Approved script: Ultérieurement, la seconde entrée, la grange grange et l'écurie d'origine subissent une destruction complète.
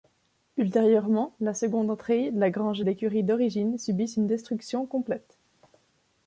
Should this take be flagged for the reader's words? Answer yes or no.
yes